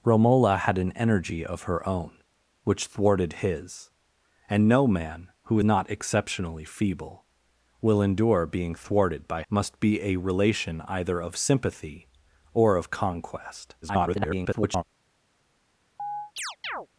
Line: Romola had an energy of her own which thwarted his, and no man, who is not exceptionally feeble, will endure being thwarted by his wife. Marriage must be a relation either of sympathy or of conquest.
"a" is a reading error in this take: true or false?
false